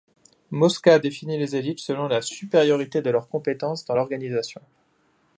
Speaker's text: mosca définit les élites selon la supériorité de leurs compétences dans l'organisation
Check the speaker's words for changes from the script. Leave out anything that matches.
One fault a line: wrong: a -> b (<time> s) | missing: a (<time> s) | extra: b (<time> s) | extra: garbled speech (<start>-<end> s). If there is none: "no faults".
no faults